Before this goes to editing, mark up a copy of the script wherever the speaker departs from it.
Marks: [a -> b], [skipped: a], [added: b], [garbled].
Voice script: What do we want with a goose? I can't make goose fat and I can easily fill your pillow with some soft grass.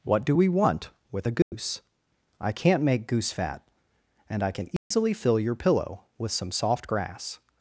What do we want with a goose? I can't make goose fat and I can easily fill your pillow with some soft grass.